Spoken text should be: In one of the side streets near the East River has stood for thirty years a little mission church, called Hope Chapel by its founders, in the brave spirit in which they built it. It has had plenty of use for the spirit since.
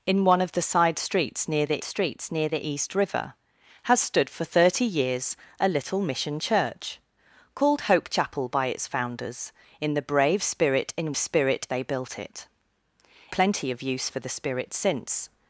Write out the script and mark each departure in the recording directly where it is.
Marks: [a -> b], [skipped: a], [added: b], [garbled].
In one of the side streets near the [added: streets near the] East River has stood for thirty years a little mission church, called Hope Chapel by its founders, in the brave spirit in [which -> spirit] they built it. [skipped: It has had] plenty of use for the spirit since.